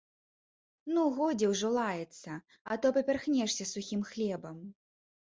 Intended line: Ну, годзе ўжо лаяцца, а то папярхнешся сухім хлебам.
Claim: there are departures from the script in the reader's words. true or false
false